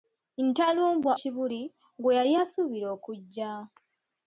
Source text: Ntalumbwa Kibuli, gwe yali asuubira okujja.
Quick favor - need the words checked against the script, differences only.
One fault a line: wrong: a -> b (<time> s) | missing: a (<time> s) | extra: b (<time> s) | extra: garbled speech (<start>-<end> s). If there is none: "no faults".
no faults